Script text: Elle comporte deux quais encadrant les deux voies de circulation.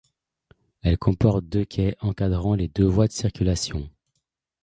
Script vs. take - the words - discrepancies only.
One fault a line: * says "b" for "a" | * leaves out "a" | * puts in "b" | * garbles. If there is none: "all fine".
all fine